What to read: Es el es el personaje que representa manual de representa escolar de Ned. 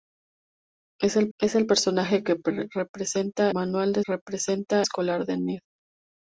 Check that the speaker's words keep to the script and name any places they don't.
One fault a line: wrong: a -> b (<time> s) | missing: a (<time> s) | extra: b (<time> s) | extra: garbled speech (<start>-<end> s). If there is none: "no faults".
no faults